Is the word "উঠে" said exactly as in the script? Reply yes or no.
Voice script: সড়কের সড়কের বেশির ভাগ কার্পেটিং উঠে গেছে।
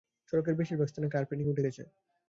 yes